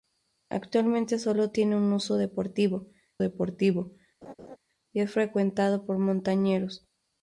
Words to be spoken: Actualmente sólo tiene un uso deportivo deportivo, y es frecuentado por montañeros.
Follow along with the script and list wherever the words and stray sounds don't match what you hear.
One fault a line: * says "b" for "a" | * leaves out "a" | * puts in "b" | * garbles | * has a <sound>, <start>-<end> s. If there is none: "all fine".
* has a laugh, 4.2-4.6 s